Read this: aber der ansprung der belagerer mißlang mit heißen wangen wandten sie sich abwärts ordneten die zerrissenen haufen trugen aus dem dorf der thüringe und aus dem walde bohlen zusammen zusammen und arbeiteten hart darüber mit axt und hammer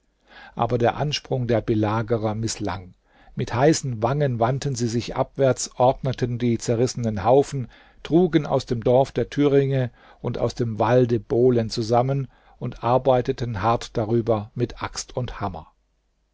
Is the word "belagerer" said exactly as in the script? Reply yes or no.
yes